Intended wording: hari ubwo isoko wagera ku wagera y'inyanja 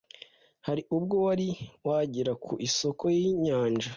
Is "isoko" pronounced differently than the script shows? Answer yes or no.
yes